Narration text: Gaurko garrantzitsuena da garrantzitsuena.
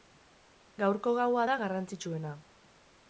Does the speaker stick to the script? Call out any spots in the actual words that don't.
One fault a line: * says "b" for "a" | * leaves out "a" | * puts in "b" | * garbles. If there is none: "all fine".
* says "gaua" for "garrantzitsuena"